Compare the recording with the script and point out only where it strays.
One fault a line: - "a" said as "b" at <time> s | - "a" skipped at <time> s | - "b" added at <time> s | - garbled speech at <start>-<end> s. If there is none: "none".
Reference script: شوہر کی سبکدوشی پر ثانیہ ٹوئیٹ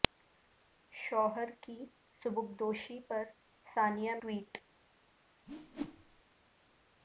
none